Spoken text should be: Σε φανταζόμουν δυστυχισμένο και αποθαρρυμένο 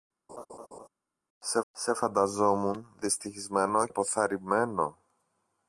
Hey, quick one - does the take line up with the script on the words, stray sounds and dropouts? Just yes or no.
no